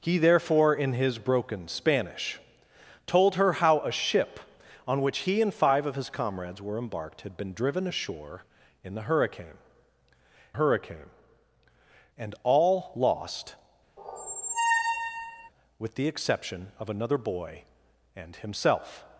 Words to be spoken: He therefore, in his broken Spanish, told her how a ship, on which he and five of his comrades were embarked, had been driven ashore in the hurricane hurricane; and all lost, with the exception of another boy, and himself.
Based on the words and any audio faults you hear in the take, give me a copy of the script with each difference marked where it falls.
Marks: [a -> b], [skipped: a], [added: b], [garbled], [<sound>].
He therefore, in his broken Spanish, told her how a ship, on which he and five of his comrades were embarked, had been driven ashore in the hurricane hurricane; and all lost, [squeak] with the exception of another boy, and himself.